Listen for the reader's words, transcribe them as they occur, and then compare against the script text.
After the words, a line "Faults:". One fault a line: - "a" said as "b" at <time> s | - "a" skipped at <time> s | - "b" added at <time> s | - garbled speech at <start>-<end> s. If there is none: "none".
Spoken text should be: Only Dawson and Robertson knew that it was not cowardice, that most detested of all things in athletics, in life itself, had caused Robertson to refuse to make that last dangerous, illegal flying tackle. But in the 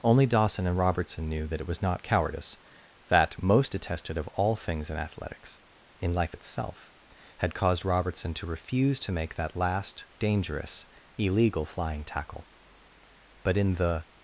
Only Dawson and Robertson knew that it was not cowardice, that most detested of all things in athletics, in life itself, had caused Robertson to refuse to make that last dangerous, illegal flying tackle. But in the
Faults:
none